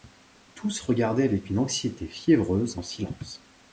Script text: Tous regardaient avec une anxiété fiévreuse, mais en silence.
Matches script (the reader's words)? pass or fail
fail